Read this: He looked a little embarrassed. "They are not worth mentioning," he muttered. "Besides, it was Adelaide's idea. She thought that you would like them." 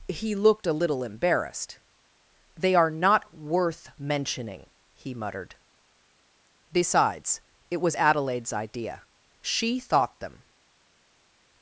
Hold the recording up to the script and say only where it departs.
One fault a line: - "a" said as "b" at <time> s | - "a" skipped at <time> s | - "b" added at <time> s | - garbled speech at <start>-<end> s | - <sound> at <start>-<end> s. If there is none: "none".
- "that you would like" skipped at 10.2 s